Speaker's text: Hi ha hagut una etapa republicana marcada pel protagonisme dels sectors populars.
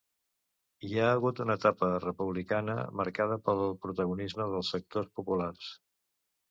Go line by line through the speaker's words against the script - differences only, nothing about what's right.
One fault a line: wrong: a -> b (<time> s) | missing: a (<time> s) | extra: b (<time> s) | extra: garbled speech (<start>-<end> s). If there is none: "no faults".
no faults